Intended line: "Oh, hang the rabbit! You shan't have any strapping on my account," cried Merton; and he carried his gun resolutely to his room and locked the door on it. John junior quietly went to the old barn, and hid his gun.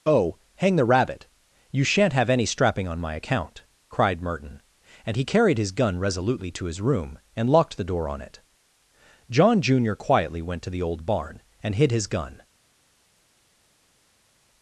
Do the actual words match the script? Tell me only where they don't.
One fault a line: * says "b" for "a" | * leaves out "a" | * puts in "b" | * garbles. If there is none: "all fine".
all fine